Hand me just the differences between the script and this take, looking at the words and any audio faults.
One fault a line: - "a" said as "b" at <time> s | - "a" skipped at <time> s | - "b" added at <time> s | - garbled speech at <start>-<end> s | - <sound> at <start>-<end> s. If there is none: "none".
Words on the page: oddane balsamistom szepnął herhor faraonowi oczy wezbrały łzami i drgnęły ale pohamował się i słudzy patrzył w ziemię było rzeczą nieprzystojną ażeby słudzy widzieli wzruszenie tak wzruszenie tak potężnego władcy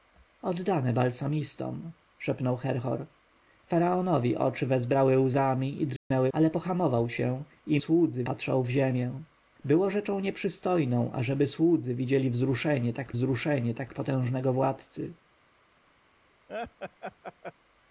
- dropout at 6.0-6.1 s
- laugh at 16.5-17.5 s